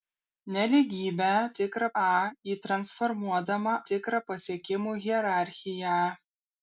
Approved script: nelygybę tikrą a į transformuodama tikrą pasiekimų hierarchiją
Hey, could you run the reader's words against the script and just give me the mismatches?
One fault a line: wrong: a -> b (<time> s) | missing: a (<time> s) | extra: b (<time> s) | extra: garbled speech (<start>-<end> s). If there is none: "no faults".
no faults